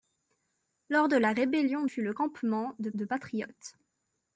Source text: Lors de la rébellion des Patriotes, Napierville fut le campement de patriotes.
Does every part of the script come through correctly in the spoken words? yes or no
no